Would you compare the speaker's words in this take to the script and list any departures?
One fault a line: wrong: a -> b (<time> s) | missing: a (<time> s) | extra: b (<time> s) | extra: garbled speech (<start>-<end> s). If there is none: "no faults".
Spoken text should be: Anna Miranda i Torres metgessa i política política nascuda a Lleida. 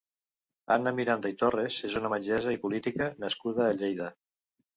extra: és una (1.9 s)
missing: política (3.1 s)